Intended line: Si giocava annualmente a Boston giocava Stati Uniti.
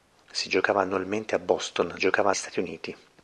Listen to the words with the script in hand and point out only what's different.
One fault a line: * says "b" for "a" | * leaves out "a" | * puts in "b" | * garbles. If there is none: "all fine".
all fine